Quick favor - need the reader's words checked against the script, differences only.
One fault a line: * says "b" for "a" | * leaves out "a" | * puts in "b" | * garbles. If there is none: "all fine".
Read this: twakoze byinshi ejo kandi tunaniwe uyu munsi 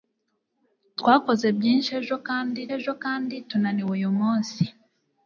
* puts in "ejo kandi"